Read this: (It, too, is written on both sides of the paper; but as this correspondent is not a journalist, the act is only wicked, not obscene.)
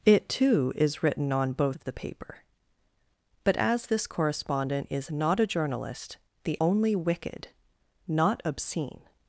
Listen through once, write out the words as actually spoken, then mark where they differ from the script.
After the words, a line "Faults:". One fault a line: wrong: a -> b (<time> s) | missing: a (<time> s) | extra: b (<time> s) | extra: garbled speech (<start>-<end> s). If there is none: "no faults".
(It, too, is written on both of the paper; but as this correspondent is not a journalist, the only wicked, not obscene.)
Faults:
missing: sides (1.8 s)
missing: act is (6.6 s)